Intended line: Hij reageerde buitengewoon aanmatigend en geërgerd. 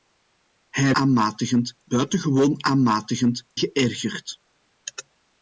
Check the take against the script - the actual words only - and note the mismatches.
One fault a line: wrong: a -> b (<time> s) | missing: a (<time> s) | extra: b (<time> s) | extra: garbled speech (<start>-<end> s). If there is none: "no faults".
wrong: reageerde -> aanmatigend (0.9 s)
missing: en (3.5 s)